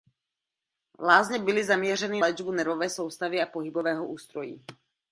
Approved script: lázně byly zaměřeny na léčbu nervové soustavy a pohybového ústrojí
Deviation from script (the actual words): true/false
true